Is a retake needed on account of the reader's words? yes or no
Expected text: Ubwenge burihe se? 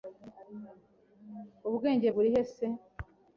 no